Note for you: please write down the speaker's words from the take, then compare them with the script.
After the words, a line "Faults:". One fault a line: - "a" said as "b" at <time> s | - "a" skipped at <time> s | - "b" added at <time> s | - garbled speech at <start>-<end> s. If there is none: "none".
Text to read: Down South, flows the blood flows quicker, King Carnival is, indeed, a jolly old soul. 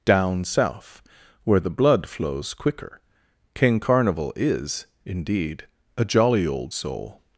Down South, where the blood flows quicker, King Carnival is, indeed, a jolly old soul.
Faults:
- "flows" said as "where" at 1.4 s